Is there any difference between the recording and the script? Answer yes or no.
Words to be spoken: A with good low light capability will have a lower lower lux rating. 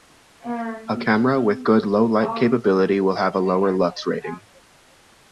yes